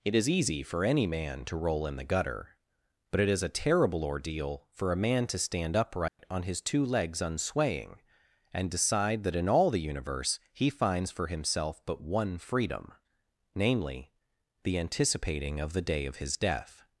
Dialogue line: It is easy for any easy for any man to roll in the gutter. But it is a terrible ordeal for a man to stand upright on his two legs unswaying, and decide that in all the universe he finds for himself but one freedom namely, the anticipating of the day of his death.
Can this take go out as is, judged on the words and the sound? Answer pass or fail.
fail